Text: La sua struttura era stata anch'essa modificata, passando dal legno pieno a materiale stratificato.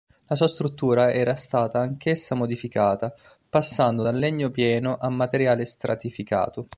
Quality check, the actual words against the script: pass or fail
pass